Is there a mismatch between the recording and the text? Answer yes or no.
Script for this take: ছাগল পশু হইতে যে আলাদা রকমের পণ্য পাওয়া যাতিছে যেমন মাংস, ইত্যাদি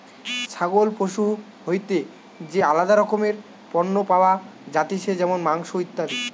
no